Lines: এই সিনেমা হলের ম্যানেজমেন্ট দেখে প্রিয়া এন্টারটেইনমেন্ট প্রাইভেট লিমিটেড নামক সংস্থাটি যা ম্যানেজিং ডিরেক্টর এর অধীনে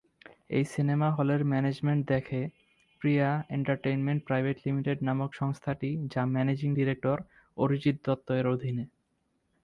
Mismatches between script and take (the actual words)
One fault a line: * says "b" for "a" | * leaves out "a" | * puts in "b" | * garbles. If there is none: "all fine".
* puts in "অরিজিৎ দত্ত"